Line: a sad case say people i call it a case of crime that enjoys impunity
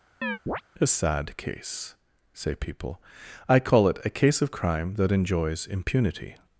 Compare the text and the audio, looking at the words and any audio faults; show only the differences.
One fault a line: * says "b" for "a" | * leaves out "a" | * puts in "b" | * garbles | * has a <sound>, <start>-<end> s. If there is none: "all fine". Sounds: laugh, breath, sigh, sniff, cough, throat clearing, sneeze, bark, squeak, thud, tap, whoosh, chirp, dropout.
* has a chirp, 0.2-0.6 s